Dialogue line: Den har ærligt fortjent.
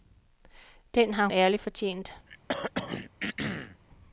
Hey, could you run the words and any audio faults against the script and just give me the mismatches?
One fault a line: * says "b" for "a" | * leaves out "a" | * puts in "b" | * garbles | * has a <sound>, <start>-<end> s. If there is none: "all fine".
* has a throat clearing, 2.3-3.8 s